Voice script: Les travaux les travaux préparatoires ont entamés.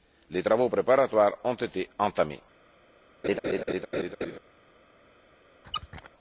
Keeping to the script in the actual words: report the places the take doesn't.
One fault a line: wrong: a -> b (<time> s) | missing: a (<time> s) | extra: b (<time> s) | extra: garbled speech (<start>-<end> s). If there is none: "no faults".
missing: les travaux (0.7 s)
extra: été (1.6 s)